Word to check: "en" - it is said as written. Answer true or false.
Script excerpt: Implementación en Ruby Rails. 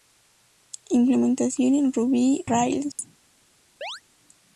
true